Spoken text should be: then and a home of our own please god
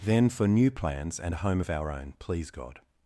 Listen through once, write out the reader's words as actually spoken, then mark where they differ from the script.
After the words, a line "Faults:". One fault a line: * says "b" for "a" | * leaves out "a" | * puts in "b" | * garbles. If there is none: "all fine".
then for new plans and a home of our own please god
Faults:
* puts in "for new plans"